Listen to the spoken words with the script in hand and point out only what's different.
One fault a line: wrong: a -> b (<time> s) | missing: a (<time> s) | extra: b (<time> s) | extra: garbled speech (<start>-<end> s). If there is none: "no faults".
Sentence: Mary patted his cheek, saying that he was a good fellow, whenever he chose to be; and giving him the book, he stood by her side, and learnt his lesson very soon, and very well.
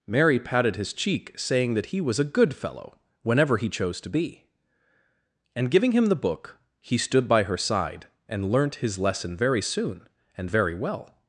no faults